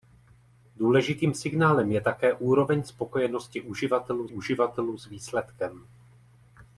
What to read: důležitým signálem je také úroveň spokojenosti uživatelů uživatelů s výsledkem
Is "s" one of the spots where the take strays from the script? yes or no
no